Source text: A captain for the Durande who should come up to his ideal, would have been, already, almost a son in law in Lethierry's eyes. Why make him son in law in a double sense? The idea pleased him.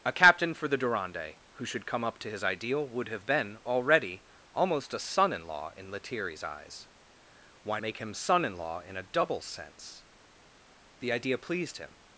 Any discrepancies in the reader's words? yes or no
no